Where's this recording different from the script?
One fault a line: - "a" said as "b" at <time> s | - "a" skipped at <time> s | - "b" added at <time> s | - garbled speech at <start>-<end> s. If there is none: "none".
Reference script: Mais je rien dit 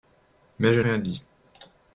none